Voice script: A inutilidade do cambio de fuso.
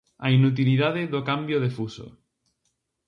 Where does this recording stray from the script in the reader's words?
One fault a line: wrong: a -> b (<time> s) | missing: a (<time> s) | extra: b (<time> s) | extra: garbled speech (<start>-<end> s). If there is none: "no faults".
no faults